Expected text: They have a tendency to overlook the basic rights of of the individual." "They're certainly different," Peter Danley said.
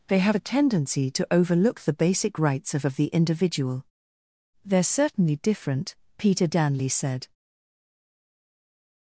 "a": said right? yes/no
yes